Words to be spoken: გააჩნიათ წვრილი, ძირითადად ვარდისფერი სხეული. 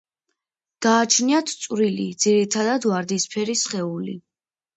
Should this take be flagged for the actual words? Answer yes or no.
no